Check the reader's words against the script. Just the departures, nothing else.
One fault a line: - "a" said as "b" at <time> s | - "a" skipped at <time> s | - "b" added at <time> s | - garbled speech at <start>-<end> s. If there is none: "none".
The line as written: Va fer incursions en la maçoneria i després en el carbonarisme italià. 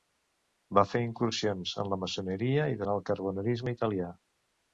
- "després" skipped at 2.8 s